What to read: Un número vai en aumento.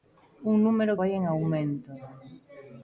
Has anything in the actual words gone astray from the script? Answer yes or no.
no